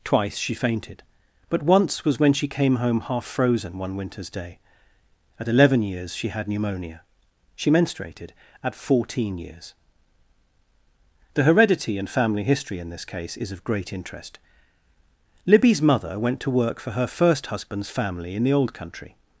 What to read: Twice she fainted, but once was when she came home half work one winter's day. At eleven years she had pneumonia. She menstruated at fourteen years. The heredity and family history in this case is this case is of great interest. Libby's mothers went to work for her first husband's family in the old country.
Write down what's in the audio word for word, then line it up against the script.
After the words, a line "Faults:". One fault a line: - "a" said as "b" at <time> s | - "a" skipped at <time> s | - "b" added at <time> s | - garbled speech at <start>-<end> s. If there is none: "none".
Twice she fainted, but once was when she came home half frozen one winter's day. At eleven years she had pneumonia. She menstruated at fourteen years. The heredity and family history in this case is of great interest. Libby's mother went to work for her first husband's family in the old country.
Faults:
- "work" said as "frozen" at 3.2 s
- "this case is" skipped at 13.5 s
- "mothers" said as "mother" at 15.8 s